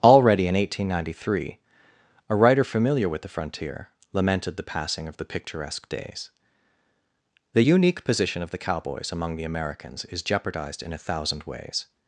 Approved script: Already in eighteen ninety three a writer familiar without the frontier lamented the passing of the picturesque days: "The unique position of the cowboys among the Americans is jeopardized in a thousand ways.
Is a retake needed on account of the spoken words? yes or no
yes